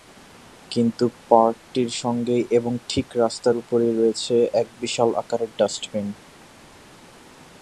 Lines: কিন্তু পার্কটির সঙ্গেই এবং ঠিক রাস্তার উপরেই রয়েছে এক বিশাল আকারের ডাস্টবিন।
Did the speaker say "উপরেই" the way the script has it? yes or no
yes